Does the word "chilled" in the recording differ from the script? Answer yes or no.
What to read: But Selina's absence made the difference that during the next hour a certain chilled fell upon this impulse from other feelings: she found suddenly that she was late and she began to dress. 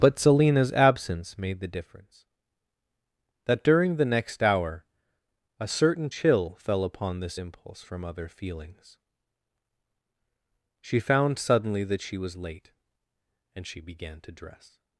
yes